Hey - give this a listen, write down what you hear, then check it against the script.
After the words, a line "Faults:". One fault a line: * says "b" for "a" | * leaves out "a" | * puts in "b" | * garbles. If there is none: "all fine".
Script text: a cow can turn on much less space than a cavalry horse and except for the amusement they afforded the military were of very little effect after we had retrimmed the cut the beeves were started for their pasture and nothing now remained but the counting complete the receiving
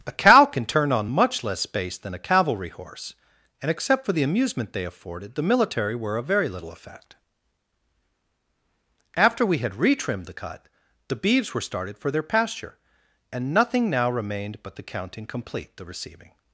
a cow can turn on much less space than a cavalry horse and except for the amusement they afforded the military were of very little effect after we had retrimmed the cut the beeves were started for their pasture and nothing now remained but the counting complete the receiving
Faults:
all fine